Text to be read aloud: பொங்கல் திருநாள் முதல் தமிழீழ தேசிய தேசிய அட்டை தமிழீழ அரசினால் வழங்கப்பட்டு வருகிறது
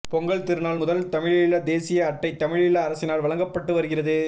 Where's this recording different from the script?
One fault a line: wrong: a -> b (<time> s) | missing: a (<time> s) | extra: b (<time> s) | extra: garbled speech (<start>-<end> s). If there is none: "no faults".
missing: தேசிய (2.0 s)